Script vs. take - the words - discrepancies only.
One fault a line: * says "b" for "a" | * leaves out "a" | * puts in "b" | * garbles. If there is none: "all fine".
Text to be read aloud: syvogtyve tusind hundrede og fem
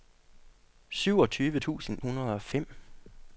all fine